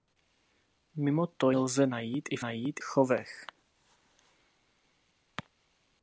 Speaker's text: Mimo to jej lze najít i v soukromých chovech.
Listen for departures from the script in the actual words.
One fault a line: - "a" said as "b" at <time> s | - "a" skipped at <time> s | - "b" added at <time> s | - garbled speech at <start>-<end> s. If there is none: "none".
- "jej" skipped at 1.5 s
- "soukromých" said as "najít" at 2.4 s